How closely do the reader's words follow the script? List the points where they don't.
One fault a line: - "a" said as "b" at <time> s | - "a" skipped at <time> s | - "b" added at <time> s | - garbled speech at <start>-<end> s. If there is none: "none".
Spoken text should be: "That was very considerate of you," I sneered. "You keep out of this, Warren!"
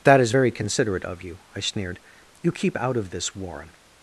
- "was" said as "is" at 0.2 s